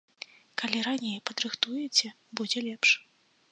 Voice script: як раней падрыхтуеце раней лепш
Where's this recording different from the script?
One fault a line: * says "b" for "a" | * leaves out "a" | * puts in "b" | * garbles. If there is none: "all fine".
* says "калі" for "як"
* says "будзе" for "раней"